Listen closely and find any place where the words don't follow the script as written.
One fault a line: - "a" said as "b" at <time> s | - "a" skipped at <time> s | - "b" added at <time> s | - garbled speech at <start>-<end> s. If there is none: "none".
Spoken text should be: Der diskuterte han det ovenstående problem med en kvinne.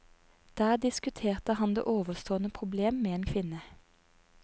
none